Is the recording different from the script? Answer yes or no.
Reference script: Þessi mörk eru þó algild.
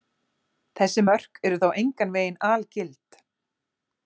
yes